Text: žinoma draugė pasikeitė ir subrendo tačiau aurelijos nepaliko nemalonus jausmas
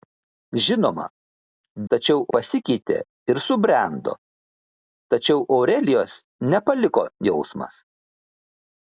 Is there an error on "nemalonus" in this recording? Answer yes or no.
yes